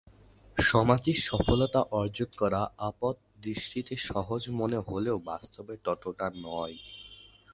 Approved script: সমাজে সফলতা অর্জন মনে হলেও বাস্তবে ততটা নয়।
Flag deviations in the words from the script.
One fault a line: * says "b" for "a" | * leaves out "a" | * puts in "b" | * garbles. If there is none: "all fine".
* puts in "করা আপাতদৃষ্টিতে সহজ"